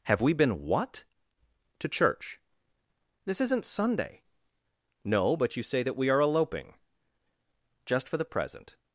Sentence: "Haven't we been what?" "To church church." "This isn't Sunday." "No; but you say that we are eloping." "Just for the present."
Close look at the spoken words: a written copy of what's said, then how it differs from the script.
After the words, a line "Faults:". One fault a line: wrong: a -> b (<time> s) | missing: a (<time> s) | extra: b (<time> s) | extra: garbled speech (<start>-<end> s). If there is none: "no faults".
"Have we been what?" "To church." "This isn't Sunday." "No; but you say that we are eloping." "Just for the present."
Faults:
wrong: Haven't -> Have (0.0 s)
missing: church (2.4 s)